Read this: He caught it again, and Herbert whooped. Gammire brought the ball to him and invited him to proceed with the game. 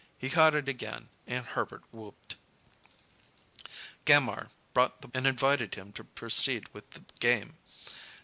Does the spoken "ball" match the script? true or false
false